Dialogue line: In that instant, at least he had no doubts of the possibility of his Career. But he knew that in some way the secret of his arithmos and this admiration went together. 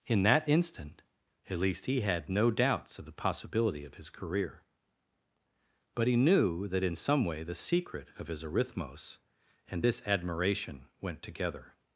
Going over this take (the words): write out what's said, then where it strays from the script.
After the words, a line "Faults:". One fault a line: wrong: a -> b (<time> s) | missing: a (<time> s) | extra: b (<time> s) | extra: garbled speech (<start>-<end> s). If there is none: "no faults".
In that instant, at least he had no doubts of the possibility of his Career. But he knew that in some way the secret of his arithmos and this admiration went together.
Faults:
no faults